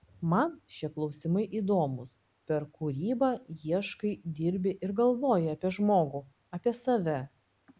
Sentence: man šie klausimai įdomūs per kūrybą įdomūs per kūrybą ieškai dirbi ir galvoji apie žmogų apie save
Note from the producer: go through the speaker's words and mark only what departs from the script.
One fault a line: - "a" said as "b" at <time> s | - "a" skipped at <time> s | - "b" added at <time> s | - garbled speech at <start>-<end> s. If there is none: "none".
- "įdomūs per kūrybą" skipped at 3.3 s